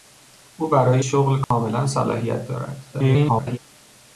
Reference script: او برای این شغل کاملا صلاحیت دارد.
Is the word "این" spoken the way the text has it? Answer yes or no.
no